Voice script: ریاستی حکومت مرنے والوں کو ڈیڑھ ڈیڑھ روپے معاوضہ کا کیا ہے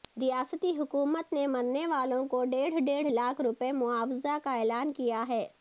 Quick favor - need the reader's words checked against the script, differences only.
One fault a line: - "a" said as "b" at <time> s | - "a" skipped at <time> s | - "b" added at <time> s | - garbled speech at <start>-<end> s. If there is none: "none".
- "نے" added at 1.3 s
- "لاکھ" added at 3.1 s
- "اعلان" added at 4.5 s